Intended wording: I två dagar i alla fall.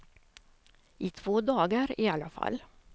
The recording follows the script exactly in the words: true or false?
true